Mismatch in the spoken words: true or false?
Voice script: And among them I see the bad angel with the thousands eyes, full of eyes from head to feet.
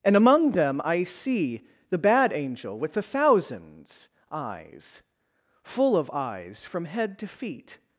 false